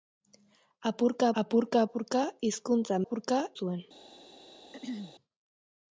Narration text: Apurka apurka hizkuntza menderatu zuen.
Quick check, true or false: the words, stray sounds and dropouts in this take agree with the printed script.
false